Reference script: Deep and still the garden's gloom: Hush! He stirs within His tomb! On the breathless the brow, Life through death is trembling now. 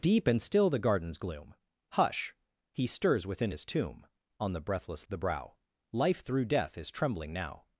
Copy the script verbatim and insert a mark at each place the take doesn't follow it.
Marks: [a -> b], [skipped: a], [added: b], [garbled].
Deep and still the garden's gloom: Hush! He stirs within His tomb! On the breathless the brow, Life through death is trembling now.